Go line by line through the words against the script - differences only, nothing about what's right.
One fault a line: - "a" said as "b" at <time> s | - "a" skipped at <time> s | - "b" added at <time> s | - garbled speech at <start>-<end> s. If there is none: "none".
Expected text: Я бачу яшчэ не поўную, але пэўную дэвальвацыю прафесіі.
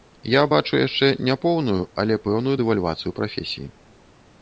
none